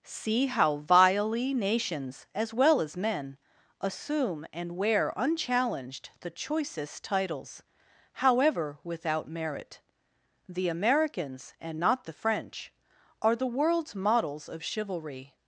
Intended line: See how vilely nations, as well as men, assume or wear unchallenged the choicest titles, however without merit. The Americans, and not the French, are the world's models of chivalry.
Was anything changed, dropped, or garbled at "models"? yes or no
no